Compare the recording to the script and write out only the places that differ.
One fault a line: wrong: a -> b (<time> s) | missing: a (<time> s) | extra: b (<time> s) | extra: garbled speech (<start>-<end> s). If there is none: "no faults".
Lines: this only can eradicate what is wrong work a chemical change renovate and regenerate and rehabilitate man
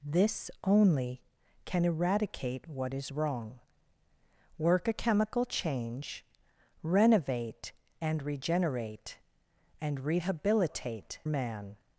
no faults